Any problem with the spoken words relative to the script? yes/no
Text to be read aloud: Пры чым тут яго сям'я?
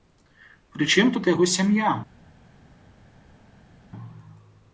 no